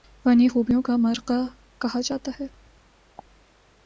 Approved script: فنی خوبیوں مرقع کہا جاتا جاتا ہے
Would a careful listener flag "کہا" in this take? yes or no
no